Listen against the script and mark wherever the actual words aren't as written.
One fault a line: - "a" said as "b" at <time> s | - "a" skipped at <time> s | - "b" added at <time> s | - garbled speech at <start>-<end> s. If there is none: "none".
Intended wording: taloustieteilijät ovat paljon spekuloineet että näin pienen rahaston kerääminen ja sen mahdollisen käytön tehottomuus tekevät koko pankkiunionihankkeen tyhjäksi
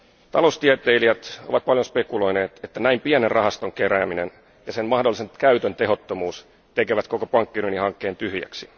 none